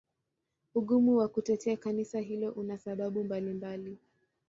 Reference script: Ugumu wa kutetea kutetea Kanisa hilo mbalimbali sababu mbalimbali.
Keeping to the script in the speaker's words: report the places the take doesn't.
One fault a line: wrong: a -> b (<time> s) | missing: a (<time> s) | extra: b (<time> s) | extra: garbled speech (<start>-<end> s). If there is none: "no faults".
missing: kutetea (1.8 s)
wrong: mbalimbali -> una (2.5 s)